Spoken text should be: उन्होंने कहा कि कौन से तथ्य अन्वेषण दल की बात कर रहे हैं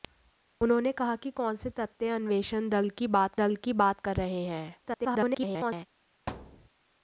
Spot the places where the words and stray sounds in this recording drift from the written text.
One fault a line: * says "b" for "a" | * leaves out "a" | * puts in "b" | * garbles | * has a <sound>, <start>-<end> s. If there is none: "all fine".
* puts in "दल की बात"
* garbles
* has a thud, 6.3-6.7 s